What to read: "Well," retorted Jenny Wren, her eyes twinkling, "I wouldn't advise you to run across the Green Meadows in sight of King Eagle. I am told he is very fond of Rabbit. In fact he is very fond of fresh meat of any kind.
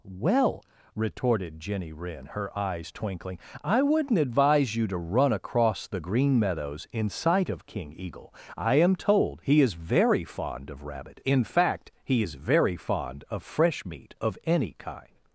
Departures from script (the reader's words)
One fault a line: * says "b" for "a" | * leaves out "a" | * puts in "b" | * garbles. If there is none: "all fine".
all fine